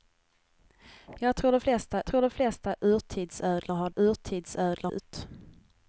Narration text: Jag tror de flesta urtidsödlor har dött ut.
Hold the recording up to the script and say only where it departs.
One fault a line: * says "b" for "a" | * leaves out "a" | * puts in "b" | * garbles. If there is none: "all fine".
* puts in "tror de flesta"
* says "urtidsödlor" for "dött"